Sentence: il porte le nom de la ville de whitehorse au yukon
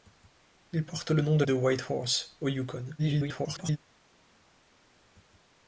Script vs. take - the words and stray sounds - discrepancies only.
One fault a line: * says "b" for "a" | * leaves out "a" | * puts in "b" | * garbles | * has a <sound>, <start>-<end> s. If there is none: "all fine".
* leaves out "la ville"
* garbles